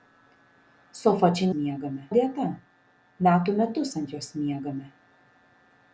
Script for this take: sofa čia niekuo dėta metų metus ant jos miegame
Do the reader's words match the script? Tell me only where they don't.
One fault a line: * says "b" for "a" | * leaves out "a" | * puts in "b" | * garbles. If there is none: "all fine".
* says "miegame" for "niekuo"